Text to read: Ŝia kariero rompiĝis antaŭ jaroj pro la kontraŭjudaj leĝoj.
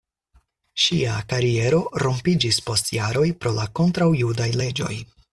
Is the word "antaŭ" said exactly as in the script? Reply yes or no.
no